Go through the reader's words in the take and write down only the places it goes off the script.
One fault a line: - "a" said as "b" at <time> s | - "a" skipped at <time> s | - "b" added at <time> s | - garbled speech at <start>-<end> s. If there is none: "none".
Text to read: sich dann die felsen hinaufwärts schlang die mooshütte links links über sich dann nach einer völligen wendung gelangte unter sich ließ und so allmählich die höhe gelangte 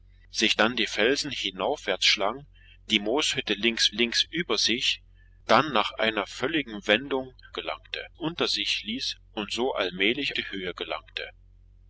none